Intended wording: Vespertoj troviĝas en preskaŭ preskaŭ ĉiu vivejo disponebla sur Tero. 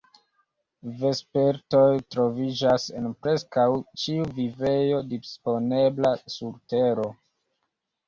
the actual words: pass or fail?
fail